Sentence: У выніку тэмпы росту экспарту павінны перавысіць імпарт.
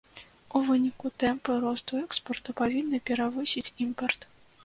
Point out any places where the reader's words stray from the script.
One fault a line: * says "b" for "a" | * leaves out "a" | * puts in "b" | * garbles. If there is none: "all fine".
all fine